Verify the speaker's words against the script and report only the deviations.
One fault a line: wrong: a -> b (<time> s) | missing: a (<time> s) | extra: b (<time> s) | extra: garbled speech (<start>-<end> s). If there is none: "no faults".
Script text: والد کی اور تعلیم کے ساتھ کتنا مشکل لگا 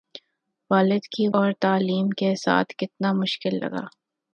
no faults